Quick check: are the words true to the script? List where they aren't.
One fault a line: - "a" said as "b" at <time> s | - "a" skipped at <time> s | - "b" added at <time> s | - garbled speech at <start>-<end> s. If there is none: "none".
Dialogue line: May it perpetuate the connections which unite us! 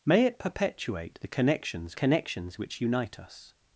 - "connections" added at 1.9 s